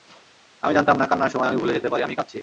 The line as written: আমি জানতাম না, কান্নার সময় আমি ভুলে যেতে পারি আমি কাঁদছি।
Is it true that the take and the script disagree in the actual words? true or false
false